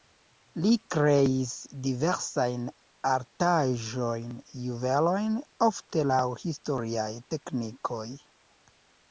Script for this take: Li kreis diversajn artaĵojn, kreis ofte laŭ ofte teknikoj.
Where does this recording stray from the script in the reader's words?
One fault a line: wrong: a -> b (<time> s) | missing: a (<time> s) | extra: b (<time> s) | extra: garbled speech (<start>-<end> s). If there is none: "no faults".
wrong: kreis -> juvelojn (4.6 s)
wrong: ofte -> historiaj (6.4 s)